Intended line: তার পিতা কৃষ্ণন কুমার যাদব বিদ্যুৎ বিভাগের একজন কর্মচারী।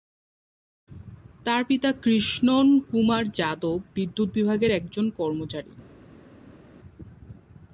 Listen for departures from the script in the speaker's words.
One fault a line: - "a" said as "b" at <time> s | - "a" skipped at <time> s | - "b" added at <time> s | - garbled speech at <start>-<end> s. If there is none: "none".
none